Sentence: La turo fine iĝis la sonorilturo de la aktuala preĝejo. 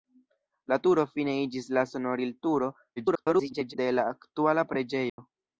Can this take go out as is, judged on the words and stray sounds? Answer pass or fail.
fail